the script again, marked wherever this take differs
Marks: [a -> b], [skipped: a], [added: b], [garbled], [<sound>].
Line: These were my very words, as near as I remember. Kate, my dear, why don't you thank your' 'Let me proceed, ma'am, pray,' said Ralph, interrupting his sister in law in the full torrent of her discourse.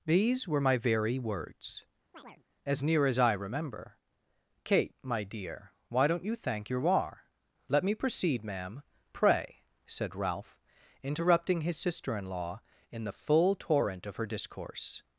These were my very words, [chirp] as near as I remember. Kate, my dear, why don't you thank your' [added: war] 'Let me proceed, ma'am, pray,' said Ralph, interrupting his sister in law in the full torrent of her discourse.